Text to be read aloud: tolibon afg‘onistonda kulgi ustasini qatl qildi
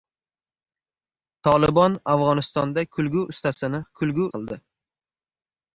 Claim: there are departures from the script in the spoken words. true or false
true